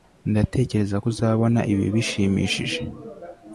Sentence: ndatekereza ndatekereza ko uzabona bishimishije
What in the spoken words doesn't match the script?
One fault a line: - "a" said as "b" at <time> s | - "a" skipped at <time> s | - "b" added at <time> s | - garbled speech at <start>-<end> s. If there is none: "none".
- "ndatekereza" skipped at 1.0 s
- "ibi" added at 1.7 s